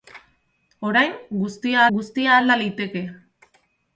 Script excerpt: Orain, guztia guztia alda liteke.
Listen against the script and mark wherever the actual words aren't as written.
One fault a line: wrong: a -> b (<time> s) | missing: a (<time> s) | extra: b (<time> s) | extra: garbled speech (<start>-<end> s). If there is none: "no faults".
no faults